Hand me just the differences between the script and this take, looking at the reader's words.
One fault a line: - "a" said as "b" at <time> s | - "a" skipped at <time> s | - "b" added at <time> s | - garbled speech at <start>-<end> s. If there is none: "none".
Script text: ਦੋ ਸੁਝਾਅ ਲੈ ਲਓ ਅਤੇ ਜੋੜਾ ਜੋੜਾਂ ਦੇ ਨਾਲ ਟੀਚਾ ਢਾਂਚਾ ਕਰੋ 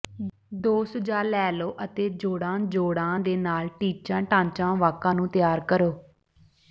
- "ਵਾਕਾਂ ਨੂੰ ਤਿਆਰ" added at 4.8 s